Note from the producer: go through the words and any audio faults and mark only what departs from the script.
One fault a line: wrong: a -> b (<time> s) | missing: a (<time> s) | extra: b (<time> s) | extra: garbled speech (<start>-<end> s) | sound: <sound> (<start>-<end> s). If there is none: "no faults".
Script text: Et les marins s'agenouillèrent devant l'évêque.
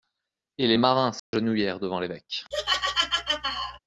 sound: dropout (1.2-1.3 s)
sound: laugh (2.5-3.8 s)